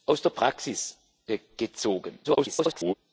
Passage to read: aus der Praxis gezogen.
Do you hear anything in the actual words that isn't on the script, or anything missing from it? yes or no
yes